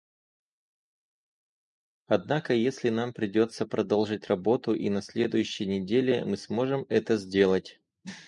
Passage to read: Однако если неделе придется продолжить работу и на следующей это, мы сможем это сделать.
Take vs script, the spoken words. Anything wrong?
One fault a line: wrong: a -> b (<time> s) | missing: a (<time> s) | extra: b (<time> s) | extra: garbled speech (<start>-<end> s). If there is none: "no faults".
wrong: неделе -> нам (2.9 s)
wrong: это -> неделе (5.7 s)